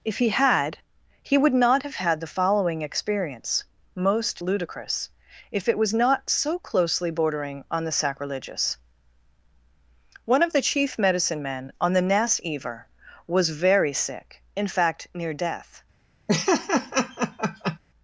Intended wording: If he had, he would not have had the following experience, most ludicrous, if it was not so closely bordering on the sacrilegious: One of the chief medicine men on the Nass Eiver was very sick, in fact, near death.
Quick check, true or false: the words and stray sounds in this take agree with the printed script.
false